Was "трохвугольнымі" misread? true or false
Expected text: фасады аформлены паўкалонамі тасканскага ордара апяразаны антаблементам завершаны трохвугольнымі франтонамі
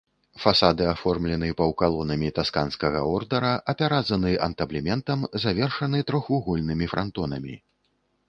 false